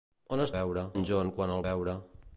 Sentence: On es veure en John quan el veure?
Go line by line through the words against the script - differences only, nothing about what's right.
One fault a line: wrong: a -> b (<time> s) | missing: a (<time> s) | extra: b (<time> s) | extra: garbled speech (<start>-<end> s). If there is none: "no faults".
no faults